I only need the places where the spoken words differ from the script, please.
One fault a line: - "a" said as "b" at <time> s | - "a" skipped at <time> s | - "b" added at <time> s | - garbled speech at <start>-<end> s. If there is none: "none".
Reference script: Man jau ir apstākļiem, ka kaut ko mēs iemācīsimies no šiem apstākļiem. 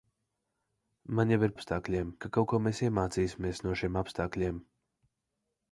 none